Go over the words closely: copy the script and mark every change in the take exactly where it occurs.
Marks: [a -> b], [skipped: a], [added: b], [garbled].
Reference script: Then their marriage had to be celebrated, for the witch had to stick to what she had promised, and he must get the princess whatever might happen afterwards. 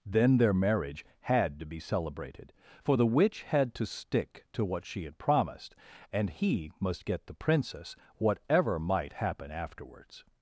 Then their marriage had to be celebrated, for the witch had to stick to what she had promised, and he must get the princess whatever might happen afterwards.